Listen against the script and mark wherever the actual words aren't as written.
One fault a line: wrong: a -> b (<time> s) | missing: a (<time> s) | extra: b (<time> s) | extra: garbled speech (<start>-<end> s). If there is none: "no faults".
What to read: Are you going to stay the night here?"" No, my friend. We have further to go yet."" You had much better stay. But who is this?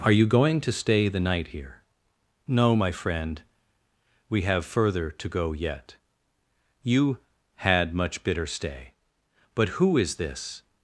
wrong: better -> bitter (8.2 s)